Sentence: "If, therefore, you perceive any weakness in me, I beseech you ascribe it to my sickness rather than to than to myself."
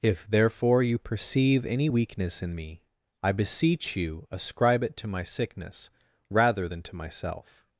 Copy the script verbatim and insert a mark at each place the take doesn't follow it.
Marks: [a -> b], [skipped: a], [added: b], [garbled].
"If, therefore, you perceive any weakness in me, I beseech you ascribe it to my sickness rather than to [skipped: than to] myself."